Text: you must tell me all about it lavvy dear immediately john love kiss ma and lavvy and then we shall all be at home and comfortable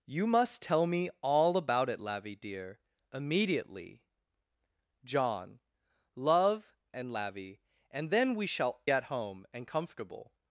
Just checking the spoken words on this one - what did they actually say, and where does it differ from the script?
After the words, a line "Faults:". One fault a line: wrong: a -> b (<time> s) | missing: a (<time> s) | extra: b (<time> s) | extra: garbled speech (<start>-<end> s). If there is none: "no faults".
you must tell me all about it lavvy dear immediately john love and lavvy and then we shall at home and comfortable
Faults:
missing: kiss ma (6.8 s)
missing: all be (8.8 s)